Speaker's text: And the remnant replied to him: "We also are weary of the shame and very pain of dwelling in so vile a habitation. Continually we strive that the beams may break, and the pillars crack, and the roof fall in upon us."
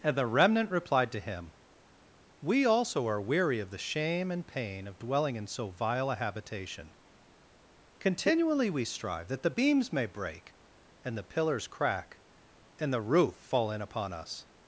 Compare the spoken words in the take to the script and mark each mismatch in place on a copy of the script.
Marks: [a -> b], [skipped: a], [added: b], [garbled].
And the remnant replied to him: "We also are weary of the shame and [skipped: very] pain of dwelling in so vile a habitation. Continually we strive that the beams may break, and the pillars crack, and the roof fall in upon us."